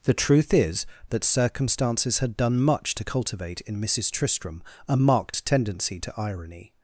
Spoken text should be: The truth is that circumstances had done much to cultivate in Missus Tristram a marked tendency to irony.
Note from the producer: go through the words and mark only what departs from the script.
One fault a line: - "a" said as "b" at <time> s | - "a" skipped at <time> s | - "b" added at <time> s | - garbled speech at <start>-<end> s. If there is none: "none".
none